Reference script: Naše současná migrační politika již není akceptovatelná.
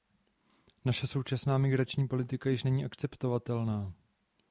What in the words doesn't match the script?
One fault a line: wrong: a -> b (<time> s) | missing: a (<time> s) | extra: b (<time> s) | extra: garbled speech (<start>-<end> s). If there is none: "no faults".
no faults